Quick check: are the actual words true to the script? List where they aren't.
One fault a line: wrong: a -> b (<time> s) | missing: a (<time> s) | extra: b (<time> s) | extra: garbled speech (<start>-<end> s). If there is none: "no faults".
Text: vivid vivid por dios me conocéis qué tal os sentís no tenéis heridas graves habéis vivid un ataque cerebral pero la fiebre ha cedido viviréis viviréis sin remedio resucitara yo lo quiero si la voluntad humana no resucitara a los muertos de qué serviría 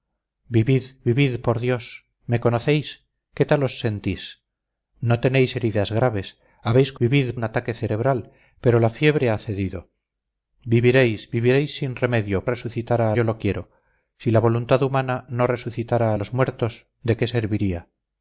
no faults